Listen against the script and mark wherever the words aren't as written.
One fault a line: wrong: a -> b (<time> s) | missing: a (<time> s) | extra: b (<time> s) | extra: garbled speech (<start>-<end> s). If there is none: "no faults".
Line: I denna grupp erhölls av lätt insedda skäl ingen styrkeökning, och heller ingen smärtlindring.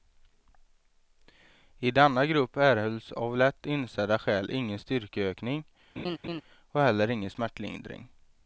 no faults